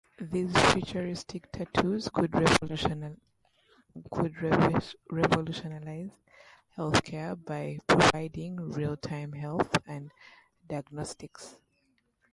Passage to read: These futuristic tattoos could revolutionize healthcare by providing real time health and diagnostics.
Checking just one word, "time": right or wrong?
right